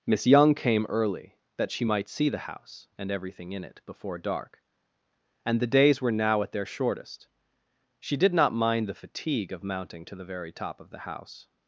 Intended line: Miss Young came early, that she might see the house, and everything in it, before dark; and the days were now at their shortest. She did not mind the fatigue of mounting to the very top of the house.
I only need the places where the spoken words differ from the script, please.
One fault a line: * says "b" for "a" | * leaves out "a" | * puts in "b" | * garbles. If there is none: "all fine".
all fine